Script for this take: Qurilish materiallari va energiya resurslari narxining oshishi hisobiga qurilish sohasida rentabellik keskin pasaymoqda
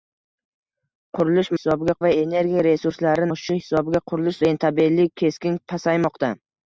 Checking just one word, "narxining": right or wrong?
wrong